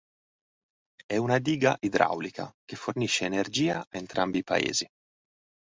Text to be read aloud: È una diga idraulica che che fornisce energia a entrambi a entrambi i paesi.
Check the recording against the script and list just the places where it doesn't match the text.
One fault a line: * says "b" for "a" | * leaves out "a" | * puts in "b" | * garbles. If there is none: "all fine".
* leaves out "che"
* leaves out "a entrambi"